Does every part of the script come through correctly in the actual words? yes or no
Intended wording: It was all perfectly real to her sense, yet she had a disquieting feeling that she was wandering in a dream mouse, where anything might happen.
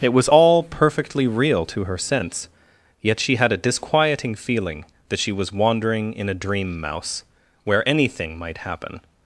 yes